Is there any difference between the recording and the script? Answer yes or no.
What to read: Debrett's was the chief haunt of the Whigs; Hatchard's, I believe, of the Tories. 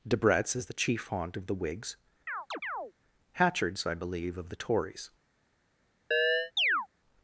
yes